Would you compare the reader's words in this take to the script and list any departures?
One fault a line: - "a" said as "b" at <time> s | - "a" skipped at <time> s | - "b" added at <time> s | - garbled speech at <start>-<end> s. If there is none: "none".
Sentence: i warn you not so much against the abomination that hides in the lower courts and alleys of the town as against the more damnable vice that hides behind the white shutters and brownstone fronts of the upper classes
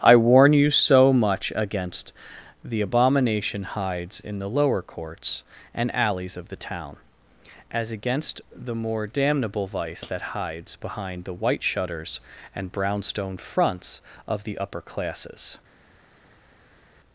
- "not" skipped at 0.7 s
- "that" skipped at 3.6 s